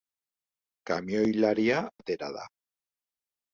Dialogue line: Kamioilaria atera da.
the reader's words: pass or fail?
pass